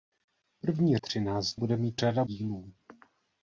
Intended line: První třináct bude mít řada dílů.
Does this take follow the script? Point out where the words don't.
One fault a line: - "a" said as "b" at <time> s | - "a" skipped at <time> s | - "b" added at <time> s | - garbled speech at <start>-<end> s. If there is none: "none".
none